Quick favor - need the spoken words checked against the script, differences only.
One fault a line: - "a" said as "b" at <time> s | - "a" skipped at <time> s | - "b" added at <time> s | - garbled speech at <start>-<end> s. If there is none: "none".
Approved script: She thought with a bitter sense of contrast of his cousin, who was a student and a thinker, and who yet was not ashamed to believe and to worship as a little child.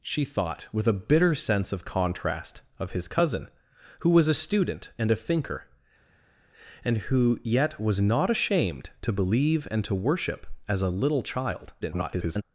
- garbled speech at 11.8-12.4 s